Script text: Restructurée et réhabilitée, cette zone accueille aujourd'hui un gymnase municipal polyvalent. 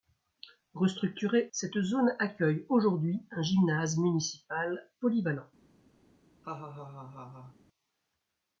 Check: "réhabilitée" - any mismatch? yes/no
yes